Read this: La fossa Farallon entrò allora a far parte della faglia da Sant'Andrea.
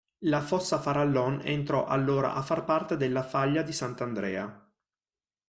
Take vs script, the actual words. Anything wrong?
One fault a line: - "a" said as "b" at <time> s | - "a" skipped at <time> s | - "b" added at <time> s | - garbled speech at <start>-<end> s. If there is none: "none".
- "da" said as "di" at 3.6 s